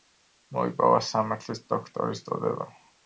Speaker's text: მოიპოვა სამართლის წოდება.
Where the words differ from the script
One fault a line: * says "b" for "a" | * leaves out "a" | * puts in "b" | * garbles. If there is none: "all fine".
* puts in "დოქტორის"